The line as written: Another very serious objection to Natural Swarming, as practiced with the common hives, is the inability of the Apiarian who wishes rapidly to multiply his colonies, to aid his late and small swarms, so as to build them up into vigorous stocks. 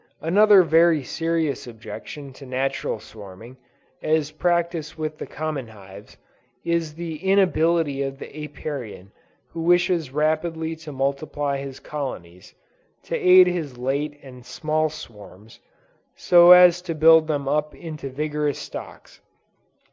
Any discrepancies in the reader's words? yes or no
no